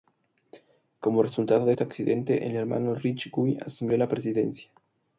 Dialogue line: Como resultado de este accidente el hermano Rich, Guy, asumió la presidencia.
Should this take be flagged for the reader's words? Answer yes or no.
no